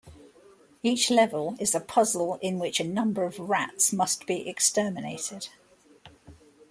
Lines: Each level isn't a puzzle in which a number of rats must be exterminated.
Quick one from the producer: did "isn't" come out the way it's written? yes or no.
no